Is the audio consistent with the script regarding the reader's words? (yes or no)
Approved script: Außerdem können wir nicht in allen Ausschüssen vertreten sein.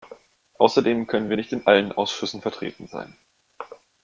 yes